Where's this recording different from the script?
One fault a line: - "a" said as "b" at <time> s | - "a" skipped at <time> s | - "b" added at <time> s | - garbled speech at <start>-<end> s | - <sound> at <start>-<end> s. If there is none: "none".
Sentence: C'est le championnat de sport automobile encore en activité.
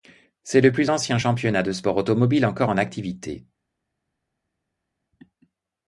- "plus ancien" added at 0.7 s